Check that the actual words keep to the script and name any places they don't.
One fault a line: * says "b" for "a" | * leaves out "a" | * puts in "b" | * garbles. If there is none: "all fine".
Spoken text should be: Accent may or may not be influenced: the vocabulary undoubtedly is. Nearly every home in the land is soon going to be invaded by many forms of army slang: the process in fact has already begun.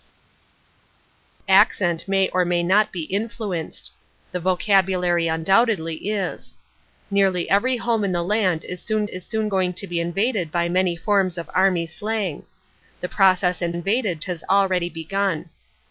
* puts in "is soon"
* says "invaded" for "fact"